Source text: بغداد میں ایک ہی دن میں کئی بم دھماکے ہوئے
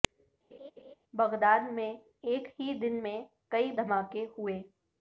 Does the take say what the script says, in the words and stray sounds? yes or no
no